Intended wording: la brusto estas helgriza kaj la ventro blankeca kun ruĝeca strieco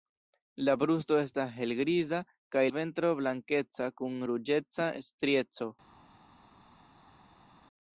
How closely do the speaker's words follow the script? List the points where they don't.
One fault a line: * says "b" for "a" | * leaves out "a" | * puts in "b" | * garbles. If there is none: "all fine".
* leaves out "la"